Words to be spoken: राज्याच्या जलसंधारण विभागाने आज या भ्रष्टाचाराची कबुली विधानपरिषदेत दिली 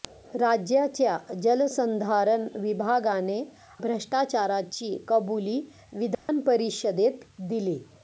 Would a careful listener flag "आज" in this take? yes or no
yes